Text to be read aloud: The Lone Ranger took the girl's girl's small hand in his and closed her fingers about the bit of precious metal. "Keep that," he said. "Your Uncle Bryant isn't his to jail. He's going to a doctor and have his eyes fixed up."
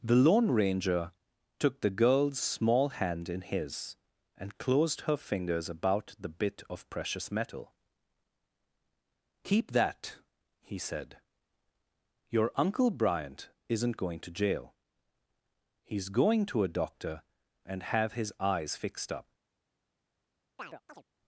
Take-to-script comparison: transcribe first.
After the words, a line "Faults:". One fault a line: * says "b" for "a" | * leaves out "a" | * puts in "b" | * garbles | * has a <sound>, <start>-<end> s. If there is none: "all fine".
The Lone Ranger took the girl's small hand in his and closed her fingers about the bit of precious metal. "Keep that," he said. "Your Uncle Bryant isn't going to jail. He's going to a doctor and have his eyes fixed up."
Faults:
* leaves out "girl's"
* says "going" for "his"
* has a chirp, 20.6-21.0 s